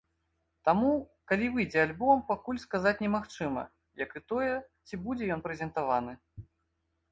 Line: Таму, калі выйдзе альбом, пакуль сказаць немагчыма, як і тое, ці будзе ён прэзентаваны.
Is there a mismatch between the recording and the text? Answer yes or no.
no